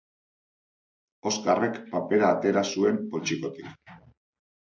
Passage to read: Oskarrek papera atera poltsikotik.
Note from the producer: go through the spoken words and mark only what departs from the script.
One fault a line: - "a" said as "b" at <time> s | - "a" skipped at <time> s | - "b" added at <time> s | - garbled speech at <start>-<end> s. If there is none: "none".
- "zuen" added at 2.7 s